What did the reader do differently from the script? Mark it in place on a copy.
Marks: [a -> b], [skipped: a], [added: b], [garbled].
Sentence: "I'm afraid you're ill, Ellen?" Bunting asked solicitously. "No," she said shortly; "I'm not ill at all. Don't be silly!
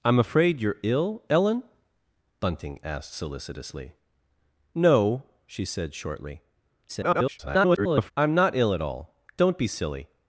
"I'm afraid you're ill, Ellen?" Bunting asked solicitously. "No," she said shortly; [garbled] "I'm not ill at all. Don't be silly!